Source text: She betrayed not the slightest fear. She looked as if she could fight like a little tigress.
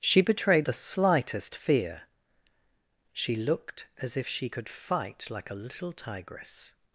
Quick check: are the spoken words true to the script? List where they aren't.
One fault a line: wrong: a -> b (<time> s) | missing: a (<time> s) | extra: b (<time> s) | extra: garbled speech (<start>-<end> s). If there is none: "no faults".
missing: not (0.7 s)